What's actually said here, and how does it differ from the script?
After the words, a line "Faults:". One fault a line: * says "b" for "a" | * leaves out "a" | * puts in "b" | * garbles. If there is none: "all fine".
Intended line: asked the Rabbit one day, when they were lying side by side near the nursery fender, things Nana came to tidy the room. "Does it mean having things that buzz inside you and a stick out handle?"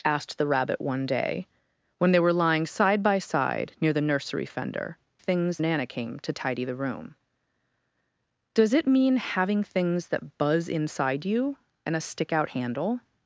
asked the Rabbit one day, when they were lying side by side near the nursery fender, things Nana came to tidy the room. "Does it mean having things that buzz inside you and a stick out handle?"
Faults:
all fine